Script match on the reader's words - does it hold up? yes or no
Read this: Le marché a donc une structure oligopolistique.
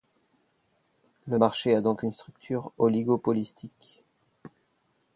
yes